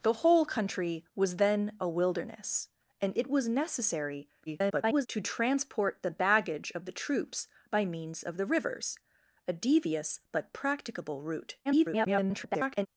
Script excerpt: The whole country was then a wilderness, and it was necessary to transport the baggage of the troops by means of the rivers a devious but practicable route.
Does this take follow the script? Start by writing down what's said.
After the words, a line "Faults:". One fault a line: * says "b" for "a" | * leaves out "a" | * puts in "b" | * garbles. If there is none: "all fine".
The whole country was then a wilderness, and it was necessary [garbled] to transport the baggage of the troops by means of the rivers a devious but practicable route. [garbled]
Faults:
* garbles
* garbles